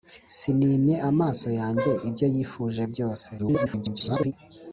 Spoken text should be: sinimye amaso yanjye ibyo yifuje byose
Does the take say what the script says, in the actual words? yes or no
no